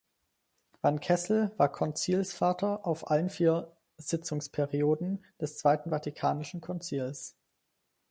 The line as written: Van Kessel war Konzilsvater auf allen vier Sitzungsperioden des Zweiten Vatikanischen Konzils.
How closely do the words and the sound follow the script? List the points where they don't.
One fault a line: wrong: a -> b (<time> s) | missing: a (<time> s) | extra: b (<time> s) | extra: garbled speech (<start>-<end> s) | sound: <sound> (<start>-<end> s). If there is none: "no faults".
no faults